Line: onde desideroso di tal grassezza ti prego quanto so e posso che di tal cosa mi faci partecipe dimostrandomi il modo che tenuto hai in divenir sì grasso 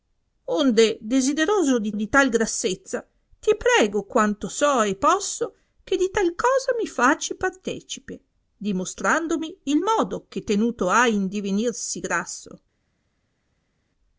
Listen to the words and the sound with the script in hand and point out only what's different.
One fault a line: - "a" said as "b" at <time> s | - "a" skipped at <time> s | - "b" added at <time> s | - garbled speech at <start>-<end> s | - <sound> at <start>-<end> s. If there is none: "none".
- "di" added at 1.9 s